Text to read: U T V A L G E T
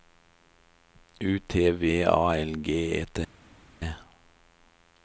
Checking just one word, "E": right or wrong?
right